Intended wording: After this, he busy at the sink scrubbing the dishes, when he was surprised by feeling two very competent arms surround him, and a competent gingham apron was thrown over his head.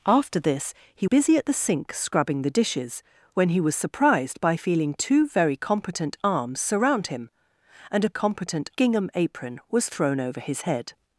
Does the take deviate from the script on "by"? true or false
false